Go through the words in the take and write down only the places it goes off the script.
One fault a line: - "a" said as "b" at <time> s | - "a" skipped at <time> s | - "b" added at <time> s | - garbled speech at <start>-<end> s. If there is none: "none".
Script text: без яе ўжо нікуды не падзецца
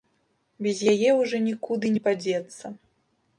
none